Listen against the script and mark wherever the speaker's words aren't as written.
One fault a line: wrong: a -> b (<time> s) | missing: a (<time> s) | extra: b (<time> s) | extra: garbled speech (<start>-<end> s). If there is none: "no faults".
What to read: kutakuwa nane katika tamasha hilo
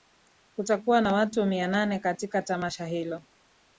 extra: na watu mia (1.0 s)